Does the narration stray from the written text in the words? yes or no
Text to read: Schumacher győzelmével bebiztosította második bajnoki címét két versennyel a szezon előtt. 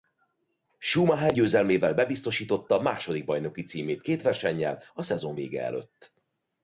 yes